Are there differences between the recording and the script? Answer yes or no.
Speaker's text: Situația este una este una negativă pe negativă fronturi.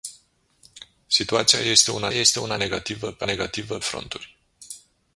no